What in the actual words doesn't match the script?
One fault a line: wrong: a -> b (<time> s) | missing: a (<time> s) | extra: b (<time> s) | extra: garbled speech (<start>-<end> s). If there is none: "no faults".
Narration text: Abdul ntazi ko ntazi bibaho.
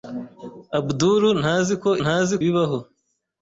no faults